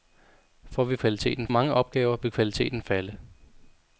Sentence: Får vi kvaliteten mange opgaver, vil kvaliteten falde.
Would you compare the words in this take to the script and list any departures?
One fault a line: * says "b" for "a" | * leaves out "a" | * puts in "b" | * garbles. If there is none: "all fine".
all fine